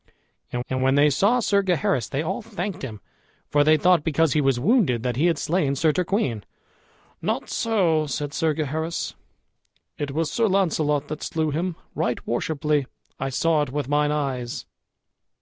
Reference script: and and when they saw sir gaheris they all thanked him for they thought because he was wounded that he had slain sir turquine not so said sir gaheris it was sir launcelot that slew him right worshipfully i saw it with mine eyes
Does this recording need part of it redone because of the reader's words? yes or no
no